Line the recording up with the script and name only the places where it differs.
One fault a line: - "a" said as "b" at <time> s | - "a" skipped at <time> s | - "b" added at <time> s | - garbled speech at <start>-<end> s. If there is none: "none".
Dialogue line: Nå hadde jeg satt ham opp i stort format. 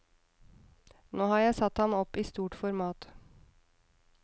- "hadde" said as "har" at 1.3 s